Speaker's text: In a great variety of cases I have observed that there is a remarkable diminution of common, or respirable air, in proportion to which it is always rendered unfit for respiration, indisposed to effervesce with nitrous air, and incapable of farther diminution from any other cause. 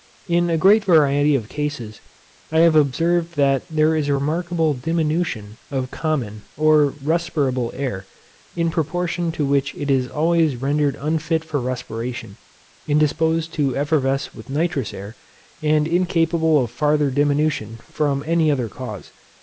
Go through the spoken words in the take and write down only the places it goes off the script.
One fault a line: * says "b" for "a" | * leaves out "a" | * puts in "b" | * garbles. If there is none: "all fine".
all fine